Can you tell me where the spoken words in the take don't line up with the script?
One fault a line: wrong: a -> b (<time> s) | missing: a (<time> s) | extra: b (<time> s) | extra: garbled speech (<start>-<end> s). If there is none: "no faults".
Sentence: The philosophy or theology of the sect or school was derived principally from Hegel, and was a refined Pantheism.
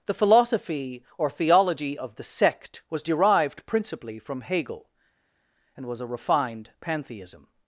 missing: or school (2.8 s)